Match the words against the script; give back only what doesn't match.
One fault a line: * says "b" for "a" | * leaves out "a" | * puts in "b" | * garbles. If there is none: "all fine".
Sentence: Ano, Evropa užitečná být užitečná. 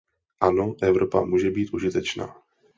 * says "může" for "užitečná"